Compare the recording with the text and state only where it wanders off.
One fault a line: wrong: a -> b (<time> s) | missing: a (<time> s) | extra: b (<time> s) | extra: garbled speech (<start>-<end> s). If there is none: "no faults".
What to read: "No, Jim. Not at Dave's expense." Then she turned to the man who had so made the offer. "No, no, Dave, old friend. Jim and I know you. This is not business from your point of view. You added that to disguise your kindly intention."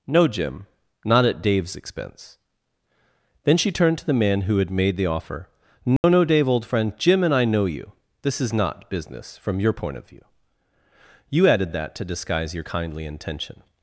missing: so (4.7 s)